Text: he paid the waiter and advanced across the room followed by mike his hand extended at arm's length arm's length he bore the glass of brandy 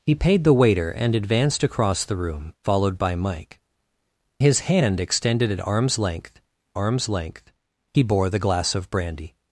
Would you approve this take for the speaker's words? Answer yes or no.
yes